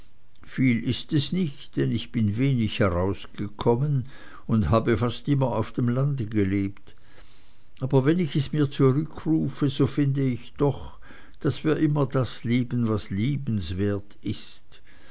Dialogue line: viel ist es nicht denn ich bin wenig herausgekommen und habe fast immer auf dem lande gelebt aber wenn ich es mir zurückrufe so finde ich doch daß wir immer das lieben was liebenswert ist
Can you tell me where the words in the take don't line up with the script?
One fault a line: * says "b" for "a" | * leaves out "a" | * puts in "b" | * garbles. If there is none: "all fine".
all fine